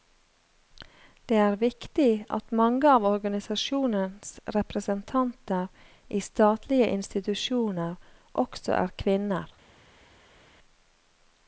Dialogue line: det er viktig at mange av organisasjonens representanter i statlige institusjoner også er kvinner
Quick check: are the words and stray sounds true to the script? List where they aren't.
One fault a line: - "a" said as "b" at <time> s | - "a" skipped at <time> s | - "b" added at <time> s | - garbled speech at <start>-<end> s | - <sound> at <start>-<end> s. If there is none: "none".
none